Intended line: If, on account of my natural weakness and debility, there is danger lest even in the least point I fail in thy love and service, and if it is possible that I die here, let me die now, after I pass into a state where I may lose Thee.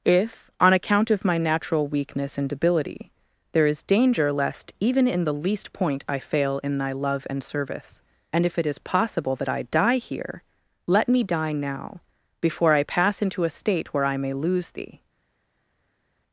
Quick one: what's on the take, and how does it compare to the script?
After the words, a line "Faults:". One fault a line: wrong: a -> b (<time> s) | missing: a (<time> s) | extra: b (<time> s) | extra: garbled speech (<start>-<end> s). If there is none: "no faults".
If, on account of my natural weakness and debility, there is danger lest even in the least point I fail in thy love and service, and if it is possible that I die here, let me die now, before I pass into a state where I may lose Thee.
Faults:
wrong: after -> before (12.4 s)